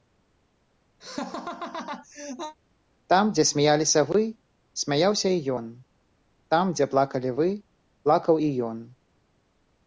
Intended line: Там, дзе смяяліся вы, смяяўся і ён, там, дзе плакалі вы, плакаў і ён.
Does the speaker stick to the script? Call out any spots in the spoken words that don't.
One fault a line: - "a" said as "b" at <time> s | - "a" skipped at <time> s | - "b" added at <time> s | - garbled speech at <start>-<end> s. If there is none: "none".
none